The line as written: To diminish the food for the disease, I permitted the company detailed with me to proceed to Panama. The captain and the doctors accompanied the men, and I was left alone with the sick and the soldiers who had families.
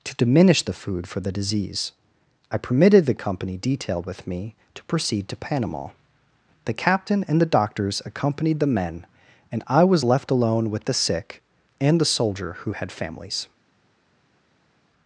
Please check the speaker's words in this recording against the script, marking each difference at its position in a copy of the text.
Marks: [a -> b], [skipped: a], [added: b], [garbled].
To diminish the food for the disease, I permitted the company detailed with me to proceed to Panama. The captain and the doctors accompanied the men, and I was left alone with the sick and the [soldiers -> soldier] who had families.